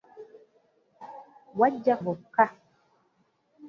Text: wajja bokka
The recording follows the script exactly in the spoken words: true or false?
true